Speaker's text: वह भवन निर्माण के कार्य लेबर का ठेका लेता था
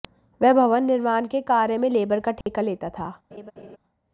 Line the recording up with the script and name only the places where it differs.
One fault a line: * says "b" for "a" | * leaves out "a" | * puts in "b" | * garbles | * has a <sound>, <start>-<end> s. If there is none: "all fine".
* puts in "में"
* has a dropout, 2.4-2.5 s
* has a laugh, 3.3-3.8 s